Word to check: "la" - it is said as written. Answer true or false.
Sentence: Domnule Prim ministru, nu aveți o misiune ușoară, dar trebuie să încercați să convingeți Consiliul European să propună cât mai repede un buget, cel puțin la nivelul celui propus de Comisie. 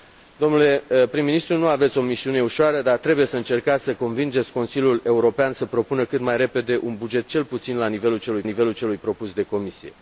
true